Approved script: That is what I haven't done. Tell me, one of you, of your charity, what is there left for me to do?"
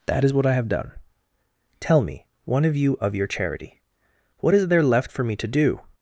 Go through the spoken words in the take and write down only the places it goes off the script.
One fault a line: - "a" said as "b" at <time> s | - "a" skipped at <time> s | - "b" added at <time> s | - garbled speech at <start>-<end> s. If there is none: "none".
- "haven't" said as "have" at 0.6 s